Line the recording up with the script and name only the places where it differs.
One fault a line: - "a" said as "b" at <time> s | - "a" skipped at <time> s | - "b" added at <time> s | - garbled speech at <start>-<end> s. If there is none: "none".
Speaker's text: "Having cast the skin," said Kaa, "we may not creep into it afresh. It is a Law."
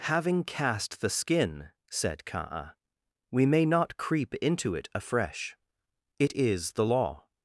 - "a" said as "the" at 6.7 s